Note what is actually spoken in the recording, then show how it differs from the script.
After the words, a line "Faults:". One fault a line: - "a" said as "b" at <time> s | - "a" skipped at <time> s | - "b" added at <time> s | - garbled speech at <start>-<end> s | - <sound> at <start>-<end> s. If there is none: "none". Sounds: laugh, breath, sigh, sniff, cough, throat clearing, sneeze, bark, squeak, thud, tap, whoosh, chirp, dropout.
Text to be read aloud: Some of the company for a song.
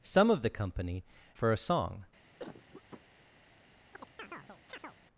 Some of the company for a song.
Faults:
- cough at 2.4-3.0 s
- chirp at 3.9-5.0 s